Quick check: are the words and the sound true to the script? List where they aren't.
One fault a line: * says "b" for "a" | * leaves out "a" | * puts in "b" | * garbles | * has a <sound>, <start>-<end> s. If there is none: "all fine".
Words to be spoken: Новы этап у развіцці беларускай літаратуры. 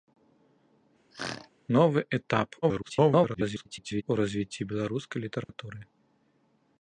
* has a throat clearing, 1.1-1.5 s
* garbles
* has a dropout, 5.4-5.5 s